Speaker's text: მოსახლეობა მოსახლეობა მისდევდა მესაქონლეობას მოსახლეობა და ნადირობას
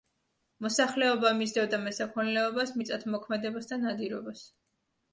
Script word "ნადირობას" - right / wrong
right